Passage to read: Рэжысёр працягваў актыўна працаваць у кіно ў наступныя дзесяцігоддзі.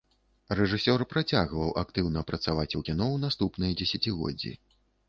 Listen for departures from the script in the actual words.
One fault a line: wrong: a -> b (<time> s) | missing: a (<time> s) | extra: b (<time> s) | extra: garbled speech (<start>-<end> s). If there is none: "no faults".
no faults